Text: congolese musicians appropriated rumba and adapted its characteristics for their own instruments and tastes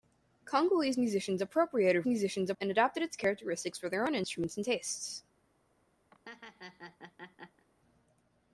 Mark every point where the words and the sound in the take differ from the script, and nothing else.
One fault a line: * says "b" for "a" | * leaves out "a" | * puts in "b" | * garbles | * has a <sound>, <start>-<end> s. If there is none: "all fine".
* says "musicians" for "rumba"
* has a laugh, 6.1-7.7 s